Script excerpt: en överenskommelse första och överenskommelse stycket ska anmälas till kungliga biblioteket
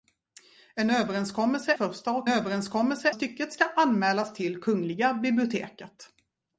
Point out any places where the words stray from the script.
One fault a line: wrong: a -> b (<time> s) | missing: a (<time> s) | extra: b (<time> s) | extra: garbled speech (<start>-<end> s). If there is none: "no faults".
no faults